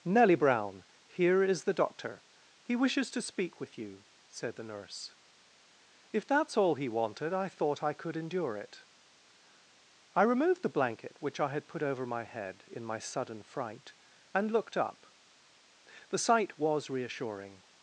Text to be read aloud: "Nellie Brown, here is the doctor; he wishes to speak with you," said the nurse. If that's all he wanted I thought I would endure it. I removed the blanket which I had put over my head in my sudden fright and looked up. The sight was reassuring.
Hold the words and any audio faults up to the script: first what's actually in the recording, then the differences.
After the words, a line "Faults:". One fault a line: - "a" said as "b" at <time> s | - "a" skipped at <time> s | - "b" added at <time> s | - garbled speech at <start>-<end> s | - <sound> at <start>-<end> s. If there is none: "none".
"Nellie Brown, here is the doctor; he wishes to speak with you," said the nurse. If that's all he wanted I thought I could endure it. I removed the blanket which I had put over my head in my sudden fright and looked up. The sight was reassuring.
Faults:
- "would" said as "could" at 7.9 s